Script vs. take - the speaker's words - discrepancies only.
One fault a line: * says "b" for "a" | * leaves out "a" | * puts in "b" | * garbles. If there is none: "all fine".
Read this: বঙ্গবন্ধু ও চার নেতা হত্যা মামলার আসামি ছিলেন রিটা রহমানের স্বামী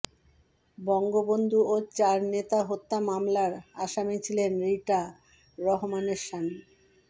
all fine